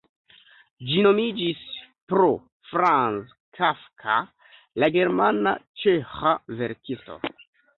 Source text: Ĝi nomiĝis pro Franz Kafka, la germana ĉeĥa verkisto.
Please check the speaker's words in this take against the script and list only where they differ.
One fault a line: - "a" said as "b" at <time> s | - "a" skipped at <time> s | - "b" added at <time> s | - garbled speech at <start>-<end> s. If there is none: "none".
none